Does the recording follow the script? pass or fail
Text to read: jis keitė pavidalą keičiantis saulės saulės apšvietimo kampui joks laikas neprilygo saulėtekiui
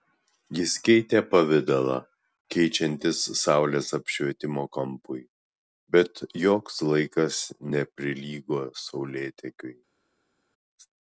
fail